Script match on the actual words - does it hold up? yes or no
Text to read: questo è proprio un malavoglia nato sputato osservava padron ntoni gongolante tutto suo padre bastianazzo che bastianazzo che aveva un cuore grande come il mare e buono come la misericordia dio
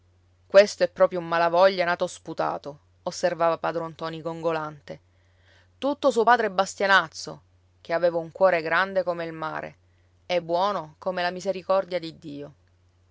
no